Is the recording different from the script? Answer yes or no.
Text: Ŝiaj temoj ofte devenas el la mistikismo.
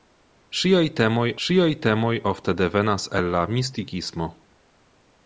yes